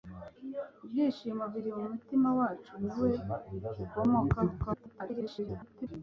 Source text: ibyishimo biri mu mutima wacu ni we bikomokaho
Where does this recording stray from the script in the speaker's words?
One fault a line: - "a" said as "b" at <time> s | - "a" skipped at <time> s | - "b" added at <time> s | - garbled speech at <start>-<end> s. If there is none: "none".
- garbled speech at 4.6-5.9 s